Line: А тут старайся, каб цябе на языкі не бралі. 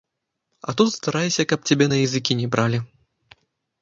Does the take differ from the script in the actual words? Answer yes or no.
no